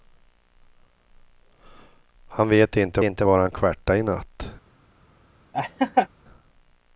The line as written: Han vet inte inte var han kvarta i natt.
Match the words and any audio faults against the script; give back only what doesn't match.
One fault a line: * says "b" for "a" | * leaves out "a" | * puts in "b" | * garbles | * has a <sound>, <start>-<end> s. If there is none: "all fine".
* has a laugh, 5.5-6.1 s